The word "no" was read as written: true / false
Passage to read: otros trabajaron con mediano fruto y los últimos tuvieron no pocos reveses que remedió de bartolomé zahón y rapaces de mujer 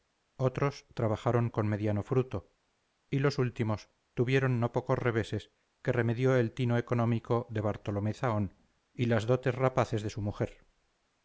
true